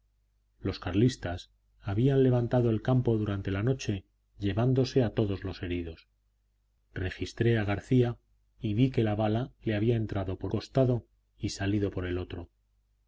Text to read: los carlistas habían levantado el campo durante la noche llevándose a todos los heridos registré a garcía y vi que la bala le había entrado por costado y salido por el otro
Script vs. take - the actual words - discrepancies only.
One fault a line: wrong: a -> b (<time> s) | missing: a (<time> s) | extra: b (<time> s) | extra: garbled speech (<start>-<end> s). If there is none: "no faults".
no faults